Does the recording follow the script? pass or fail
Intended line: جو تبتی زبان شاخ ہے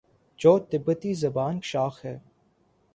pass